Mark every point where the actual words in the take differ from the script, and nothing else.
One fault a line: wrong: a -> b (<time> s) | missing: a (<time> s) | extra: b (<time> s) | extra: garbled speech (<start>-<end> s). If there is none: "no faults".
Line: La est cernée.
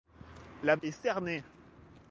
no faults